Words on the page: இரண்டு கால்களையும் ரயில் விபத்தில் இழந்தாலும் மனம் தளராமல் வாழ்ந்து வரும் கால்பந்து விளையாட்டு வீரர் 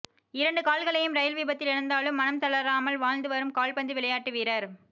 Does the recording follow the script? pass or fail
pass